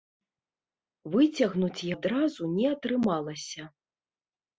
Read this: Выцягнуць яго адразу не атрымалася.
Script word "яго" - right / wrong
wrong